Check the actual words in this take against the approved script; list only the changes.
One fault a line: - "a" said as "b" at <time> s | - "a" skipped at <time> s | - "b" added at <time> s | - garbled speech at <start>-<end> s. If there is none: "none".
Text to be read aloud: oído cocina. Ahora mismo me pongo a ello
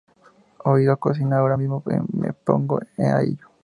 none